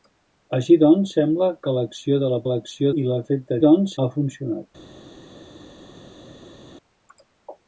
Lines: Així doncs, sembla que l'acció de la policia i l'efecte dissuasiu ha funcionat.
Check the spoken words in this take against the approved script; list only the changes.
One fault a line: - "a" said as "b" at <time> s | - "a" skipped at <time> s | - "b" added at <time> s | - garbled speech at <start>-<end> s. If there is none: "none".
- "policia" said as "l'acció" at 2.5 s
- "dissuasiu" said as "doncs" at 3.6 s